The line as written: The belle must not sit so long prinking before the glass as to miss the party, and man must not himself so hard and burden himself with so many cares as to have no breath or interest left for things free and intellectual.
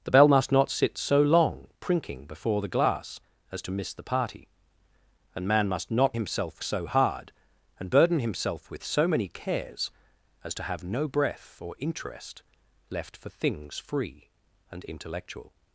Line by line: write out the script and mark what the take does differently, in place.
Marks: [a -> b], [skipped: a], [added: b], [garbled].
The belle must not sit so long prinking before the glass as to miss the party, and man must not himself so hard and burden himself with so many cares as to have no breath or interest left for things free and intellectual.